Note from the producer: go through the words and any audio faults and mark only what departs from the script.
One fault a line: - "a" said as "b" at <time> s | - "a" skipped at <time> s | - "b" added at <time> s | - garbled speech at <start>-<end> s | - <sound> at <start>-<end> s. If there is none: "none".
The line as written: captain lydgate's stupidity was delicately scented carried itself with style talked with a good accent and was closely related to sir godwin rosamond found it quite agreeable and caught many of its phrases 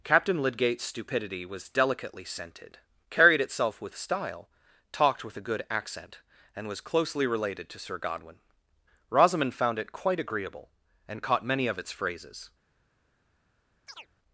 - chirp at 13.9-14.1 s